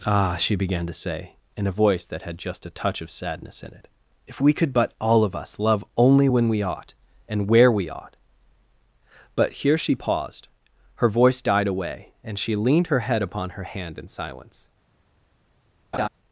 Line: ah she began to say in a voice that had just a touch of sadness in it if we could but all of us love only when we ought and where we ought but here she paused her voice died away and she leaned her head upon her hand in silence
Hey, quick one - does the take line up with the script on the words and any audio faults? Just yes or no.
no